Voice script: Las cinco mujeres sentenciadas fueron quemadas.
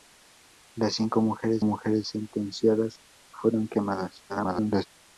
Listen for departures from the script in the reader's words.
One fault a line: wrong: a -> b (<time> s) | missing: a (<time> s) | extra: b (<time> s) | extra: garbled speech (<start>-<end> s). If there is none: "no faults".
extra: mujeres (1.6 s)
extra: garbled speech (4.3-4.9 s)